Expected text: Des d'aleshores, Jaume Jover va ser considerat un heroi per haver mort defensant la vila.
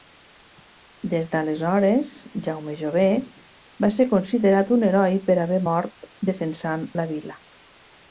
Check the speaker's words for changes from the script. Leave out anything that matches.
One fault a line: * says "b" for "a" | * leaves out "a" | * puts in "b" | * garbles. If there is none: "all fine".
all fine